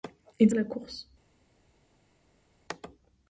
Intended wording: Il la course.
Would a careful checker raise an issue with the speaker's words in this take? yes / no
no